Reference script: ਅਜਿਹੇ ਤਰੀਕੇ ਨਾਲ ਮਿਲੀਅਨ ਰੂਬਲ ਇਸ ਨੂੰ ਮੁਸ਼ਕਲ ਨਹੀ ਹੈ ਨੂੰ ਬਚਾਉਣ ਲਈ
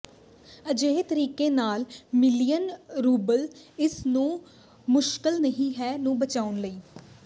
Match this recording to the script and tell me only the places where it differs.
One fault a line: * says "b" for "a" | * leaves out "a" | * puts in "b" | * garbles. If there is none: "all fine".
all fine